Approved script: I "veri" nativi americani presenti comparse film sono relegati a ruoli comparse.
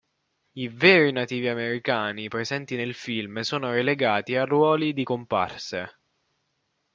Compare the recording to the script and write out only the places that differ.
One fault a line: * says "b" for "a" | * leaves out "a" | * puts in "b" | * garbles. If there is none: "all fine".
* says "nel" for "comparse"
* puts in "di"